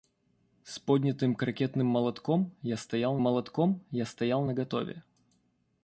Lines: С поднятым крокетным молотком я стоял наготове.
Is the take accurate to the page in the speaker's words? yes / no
no